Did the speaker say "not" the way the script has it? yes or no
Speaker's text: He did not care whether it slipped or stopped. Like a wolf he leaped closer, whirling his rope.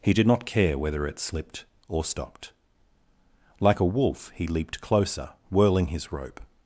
yes